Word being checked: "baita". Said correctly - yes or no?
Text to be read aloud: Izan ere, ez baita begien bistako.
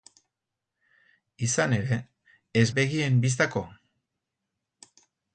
no